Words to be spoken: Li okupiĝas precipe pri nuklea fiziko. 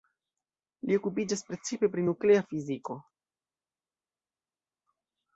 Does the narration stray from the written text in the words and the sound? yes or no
no